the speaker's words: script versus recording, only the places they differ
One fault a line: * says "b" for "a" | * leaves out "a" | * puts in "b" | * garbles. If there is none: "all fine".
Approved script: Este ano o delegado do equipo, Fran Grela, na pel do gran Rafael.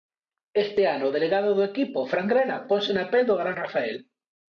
* puts in "ponse"